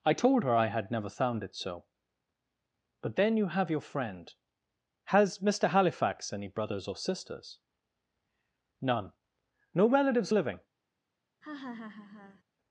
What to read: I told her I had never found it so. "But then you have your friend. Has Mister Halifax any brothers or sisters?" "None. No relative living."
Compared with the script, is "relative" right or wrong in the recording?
wrong